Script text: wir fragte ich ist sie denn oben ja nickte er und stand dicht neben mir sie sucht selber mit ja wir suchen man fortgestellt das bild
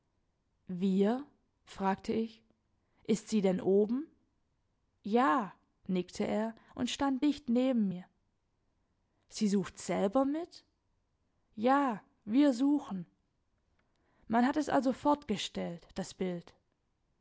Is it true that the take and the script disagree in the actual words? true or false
true